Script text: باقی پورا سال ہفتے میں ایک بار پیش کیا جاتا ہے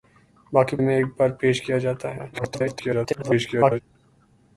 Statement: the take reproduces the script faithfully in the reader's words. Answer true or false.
false